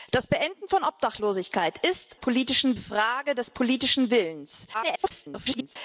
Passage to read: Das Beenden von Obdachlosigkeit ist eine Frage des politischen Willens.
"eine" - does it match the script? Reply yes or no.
no